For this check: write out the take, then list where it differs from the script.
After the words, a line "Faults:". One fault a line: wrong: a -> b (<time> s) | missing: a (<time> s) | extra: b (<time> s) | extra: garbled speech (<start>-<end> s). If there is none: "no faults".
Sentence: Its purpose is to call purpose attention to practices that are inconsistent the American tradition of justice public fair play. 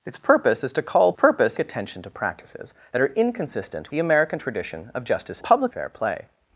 Its purpose is to call purpose attention to practices that are inconsistent the American tradition of justice public fair play.
Faults:
no faults